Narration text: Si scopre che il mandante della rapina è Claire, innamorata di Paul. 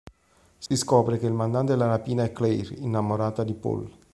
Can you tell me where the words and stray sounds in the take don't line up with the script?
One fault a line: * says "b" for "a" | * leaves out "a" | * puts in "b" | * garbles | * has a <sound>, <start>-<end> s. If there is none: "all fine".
* has a dropout, 0.7-0.7 s